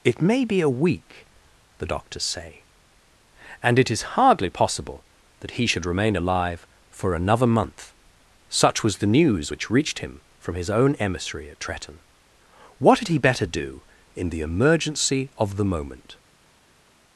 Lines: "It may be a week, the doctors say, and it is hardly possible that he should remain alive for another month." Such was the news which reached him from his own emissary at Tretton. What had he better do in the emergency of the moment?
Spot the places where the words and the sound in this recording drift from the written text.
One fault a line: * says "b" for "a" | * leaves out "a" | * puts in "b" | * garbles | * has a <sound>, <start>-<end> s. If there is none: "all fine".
all fine